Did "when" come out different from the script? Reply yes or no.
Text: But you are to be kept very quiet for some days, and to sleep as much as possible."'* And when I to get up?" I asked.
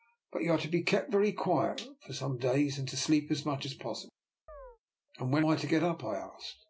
no